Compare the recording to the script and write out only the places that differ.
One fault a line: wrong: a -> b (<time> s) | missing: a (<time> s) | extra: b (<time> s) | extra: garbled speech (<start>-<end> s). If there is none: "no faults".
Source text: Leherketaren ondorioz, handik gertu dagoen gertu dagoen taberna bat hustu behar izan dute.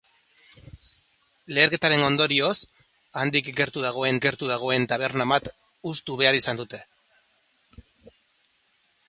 no faults